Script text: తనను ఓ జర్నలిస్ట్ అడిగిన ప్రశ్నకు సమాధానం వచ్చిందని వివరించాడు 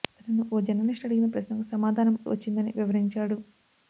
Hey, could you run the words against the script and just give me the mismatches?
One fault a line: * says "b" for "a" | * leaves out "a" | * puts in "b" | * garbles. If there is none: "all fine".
all fine